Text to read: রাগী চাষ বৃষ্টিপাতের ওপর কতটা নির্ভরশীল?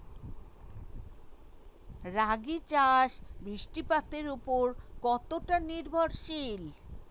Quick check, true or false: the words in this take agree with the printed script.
true